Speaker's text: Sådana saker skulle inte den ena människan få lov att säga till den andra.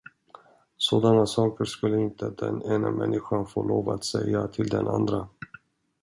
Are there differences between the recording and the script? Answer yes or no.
no